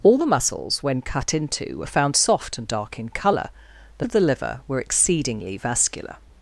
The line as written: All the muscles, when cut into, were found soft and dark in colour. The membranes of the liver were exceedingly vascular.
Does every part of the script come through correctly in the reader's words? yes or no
no